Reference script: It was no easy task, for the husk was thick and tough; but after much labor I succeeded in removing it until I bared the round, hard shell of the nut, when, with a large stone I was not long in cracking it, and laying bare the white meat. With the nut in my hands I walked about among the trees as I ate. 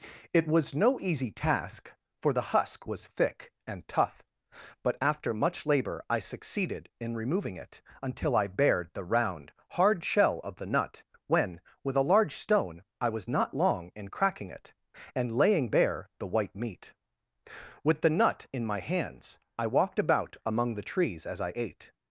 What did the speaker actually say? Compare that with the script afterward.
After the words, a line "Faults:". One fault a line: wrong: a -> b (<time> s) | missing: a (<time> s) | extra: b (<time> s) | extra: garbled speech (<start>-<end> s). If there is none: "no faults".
It was no easy task, for the husk was thick and tough; but after much labor I succeeded in removing it until I bared the round, hard shell of the nut, when, with a large stone I was not long in cracking it, and laying bare the white meat. With the nut in my hands I walked about among the trees as I ate.
Faults:
no faults